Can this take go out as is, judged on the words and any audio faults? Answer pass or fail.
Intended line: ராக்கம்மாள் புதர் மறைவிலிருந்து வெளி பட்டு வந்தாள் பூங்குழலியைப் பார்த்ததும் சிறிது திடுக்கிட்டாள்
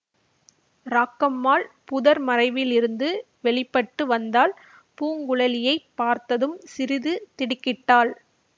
pass